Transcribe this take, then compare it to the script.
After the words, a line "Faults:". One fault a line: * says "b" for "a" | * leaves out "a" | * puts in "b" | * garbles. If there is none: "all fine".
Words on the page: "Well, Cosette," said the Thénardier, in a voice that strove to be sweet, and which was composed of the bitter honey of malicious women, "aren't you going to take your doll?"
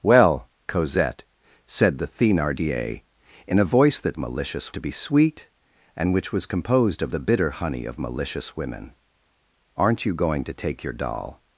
"Well, Cosette," said the Thénardier, in a voice that malicious to be sweet, and which was composed of the bitter honey of malicious women, "aren't you going to take your doll?"
Faults:
* says "malicious" for "strove"